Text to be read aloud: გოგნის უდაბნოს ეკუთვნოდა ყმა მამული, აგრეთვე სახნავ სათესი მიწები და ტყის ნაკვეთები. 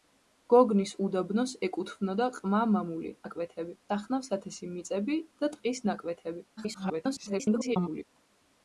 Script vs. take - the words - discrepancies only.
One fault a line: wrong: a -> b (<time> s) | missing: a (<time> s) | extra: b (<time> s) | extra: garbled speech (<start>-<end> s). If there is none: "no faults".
wrong: აგრეთვე -> ნაკვეთები (3.2 s)
extra: garbled speech (6.6-8.0 s)